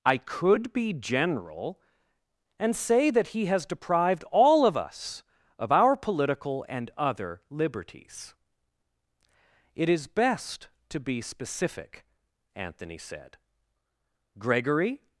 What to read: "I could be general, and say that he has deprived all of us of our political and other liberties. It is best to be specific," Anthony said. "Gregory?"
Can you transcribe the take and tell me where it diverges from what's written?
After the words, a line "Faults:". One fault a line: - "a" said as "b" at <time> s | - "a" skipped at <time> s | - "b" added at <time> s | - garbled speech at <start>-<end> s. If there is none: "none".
"I could be general, and say that he has deprived all of us of our political and other liberties. It is best to be specific," Anthony said. "Gregory?"
Faults:
none